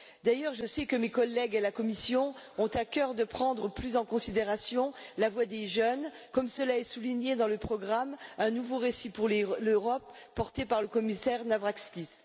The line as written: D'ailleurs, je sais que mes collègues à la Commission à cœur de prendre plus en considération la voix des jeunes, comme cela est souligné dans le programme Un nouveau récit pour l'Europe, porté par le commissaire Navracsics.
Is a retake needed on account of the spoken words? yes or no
yes